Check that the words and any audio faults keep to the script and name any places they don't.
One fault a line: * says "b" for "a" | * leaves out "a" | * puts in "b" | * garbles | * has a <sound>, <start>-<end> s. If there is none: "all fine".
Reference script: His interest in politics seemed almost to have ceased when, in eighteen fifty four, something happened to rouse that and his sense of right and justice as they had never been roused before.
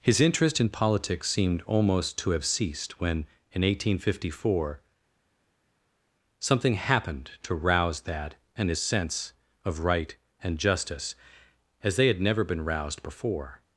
all fine